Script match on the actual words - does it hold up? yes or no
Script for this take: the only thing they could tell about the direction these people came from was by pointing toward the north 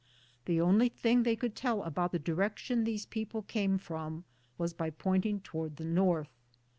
yes